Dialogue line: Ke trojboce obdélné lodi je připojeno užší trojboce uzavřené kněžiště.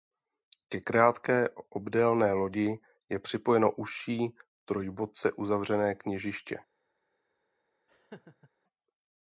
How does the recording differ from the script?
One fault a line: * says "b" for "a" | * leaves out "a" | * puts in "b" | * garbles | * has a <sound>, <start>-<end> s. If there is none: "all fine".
* says "krátké" for "trojboce"
* has a laugh, 7.9-8.5 s